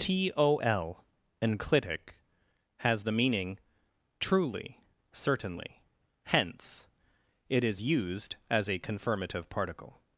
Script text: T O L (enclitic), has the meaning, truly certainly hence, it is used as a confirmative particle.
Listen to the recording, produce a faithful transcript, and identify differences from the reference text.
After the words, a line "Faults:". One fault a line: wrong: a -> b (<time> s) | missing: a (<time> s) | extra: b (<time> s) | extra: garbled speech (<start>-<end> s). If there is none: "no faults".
T O L (enclitic), has the meaning, truly certainly hence, it is used as a confirmative particle.
Faults:
no faults